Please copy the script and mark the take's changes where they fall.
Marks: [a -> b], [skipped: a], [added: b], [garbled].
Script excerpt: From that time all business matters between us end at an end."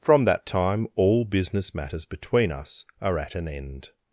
From that time all business matters between us [end -> are] at an end."